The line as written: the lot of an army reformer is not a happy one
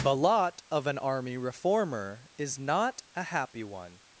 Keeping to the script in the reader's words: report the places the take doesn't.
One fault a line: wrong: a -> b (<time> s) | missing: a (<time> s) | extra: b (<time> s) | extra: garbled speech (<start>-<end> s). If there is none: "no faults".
no faults